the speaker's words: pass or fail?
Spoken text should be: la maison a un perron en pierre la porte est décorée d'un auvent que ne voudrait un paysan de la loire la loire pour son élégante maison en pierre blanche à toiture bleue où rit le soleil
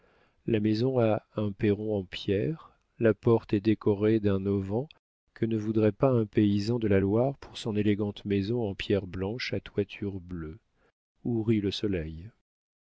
fail